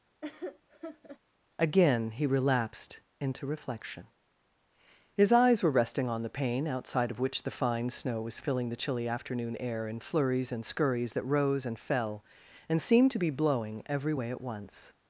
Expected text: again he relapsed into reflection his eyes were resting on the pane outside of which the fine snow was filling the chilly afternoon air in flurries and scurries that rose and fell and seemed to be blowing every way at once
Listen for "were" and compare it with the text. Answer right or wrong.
right